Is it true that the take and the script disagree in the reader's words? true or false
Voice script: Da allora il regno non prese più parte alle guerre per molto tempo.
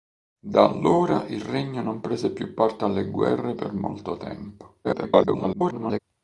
true